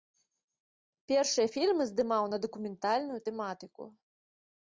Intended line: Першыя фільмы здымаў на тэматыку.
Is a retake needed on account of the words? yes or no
yes